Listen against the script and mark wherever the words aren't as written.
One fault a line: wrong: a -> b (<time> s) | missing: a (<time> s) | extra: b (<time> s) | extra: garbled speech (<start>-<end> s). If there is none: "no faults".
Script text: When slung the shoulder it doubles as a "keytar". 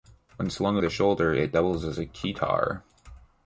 no faults